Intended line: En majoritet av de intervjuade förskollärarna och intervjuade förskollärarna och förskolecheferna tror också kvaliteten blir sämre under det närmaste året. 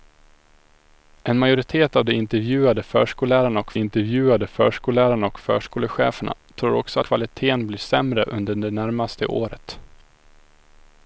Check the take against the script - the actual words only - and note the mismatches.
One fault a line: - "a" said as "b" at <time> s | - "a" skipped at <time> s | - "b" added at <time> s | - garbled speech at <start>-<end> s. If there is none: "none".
none